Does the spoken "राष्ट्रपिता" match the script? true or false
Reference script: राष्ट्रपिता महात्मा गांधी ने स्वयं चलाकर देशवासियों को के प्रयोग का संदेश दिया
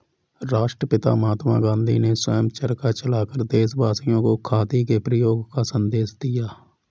true